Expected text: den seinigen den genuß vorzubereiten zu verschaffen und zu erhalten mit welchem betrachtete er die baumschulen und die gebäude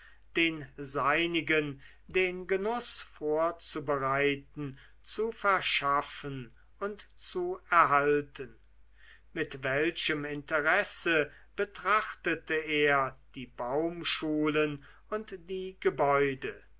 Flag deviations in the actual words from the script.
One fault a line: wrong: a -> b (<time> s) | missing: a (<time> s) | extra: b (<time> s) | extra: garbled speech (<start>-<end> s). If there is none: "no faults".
extra: interesse (10.2 s)